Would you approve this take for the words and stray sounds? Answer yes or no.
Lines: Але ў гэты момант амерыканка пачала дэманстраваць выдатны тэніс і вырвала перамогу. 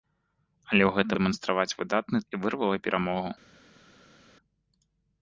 no